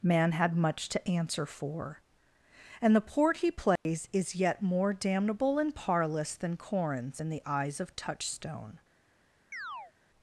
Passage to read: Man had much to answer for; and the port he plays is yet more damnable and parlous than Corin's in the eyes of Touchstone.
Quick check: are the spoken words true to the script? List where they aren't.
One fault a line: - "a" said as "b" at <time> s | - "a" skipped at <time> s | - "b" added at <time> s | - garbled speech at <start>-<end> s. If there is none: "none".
none